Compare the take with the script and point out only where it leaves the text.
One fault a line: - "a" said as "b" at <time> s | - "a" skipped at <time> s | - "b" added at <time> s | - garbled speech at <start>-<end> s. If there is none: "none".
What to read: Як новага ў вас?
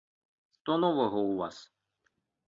- "Як" said as "Што" at 0.6 s